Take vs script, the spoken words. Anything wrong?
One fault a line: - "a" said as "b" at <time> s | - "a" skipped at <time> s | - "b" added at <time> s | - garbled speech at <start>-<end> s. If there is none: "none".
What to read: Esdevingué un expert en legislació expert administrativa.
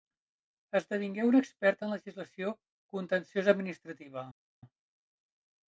- "expert" said as "contenciosa" at 3.0 s